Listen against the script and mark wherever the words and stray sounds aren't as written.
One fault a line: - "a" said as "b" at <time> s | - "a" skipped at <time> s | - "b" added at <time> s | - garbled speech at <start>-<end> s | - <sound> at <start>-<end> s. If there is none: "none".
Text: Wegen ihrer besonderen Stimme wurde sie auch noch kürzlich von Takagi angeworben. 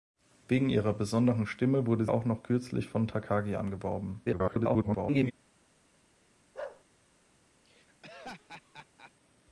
- "sie" skipped at 2.0 s
- garbled speech at 4.2-5.3 s
- bark at 6.5-6.8 s
- laugh at 7.6-9.1 s